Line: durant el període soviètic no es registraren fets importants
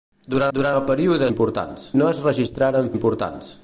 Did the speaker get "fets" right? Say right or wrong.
wrong